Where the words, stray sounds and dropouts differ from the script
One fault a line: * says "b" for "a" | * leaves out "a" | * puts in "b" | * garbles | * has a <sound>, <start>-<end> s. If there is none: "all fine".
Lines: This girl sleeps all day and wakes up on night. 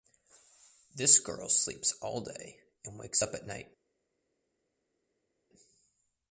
* says "at" for "on"